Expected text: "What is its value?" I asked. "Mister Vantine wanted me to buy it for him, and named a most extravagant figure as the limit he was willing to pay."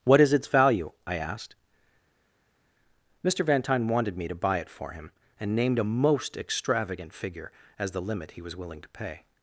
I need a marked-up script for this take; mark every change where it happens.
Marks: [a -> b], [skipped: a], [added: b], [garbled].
"What is its value?" I asked. "Mister Vantine wanted me to buy it for him, and named a most extravagant figure as the limit he was willing to pay."